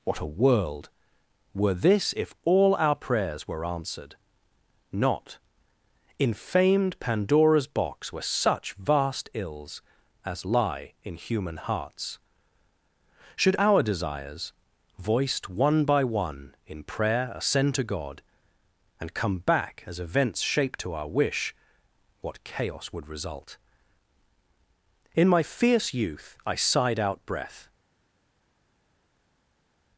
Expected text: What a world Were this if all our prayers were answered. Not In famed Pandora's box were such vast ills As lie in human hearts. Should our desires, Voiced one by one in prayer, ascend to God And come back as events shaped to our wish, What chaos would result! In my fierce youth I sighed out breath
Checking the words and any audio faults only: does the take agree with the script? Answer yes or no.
yes